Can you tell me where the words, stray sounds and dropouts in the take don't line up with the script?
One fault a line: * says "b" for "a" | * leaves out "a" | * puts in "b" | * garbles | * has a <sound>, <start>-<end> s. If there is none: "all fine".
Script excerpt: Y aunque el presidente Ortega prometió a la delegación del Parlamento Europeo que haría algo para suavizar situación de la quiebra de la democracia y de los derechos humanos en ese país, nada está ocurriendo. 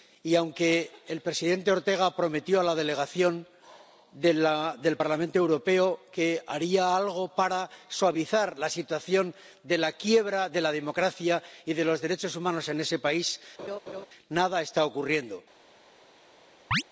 * puts in "la"
* has a laugh, 13.6-14.1 s
* has a chirp, 16.7-16.8 s